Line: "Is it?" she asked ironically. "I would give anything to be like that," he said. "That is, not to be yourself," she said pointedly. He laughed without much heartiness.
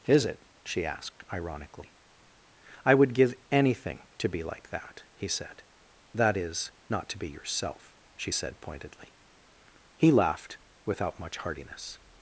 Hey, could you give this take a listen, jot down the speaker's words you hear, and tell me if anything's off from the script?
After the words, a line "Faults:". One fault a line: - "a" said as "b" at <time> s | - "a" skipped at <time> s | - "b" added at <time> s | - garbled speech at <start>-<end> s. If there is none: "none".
"Is it?" she asked ironically. "I would give anything to be like that," he said. "That is, not to be yourself," she said pointedly. He laughed without much heartiness.
Faults:
none